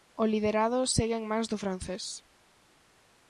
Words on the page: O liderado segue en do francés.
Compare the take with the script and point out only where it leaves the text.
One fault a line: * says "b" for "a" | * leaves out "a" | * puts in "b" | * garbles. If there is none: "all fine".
* puts in "mans"